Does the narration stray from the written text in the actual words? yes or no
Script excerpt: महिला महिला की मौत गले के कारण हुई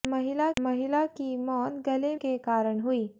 no